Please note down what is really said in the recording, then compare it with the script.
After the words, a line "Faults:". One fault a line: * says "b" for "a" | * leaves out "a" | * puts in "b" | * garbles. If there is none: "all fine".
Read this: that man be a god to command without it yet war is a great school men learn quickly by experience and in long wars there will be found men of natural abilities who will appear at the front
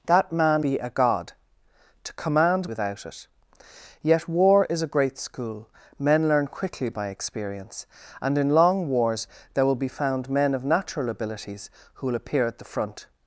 that man be a god to command without it yet war is a great school men learn quickly by experience and in long wars there will be found men of natural abilities who will appear at the front
Faults:
all fine